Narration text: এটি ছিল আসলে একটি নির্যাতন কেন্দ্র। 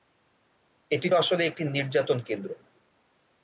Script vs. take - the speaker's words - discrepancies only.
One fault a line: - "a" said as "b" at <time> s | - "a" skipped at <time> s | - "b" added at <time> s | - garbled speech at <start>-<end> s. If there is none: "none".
- "ছিল" skipped at 1.1 s